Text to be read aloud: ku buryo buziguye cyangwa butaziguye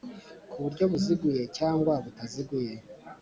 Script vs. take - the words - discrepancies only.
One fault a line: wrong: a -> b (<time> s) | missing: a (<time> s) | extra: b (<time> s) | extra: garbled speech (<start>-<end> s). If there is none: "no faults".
no faults